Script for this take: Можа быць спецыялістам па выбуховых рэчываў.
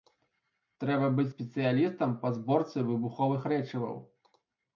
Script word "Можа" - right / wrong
wrong